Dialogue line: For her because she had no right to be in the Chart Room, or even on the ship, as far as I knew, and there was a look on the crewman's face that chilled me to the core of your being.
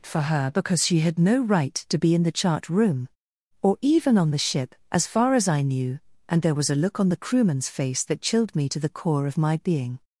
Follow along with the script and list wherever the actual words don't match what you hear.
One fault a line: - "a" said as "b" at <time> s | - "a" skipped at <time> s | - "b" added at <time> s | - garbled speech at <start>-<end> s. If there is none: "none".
- "your" said as "my" at 9.4 s